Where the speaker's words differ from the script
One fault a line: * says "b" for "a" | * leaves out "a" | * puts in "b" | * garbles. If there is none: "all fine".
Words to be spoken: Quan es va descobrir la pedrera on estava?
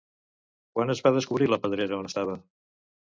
all fine